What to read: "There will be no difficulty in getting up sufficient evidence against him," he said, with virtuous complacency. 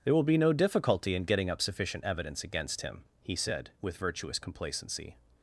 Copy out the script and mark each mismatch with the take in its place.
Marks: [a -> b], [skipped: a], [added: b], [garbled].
"There will be no difficulty in getting up sufficient evidence against him," he said, with virtuous complacency.